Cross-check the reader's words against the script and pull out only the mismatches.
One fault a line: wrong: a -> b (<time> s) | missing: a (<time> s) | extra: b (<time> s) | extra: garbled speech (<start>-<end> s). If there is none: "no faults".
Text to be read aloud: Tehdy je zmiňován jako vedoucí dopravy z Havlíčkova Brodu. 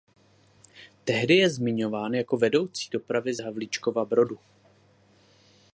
no faults